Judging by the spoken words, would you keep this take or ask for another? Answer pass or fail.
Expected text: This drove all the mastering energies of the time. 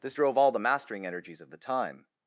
pass